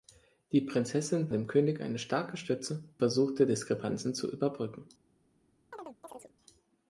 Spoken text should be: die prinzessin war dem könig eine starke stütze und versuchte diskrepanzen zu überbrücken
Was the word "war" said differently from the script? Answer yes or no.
yes